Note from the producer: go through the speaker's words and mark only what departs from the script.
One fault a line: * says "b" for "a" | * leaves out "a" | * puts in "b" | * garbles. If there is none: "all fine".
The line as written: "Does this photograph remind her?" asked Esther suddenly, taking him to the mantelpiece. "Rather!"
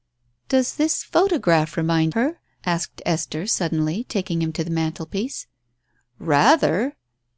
all fine